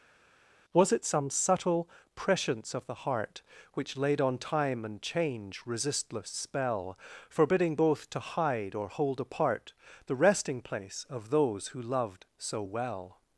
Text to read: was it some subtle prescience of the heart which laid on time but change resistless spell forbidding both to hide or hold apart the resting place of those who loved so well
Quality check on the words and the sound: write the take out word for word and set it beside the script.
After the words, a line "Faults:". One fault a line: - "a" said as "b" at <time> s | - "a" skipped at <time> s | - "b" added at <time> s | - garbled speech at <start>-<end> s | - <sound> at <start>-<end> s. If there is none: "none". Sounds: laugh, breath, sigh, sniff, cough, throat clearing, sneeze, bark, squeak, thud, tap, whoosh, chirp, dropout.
was it some subtle prescience of the heart which laid on time and change resistless spell forbidding both to hide or hold apart the resting place of those who loved so well
Faults:
- "but" said as "and" at 4.8 s